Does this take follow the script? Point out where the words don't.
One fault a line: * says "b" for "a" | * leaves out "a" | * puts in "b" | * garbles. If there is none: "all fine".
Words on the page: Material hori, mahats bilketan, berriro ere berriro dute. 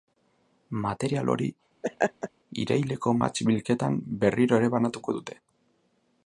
* puts in "iraileko"
* says "banatuko" for "berriro"